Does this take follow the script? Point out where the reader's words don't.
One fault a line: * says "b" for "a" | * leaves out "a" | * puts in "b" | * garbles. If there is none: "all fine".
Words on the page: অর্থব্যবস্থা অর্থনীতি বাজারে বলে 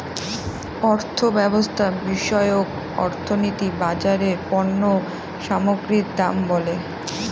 * puts in "বিষয়ক"
* puts in "পণ্য সামগ্রীর দাম"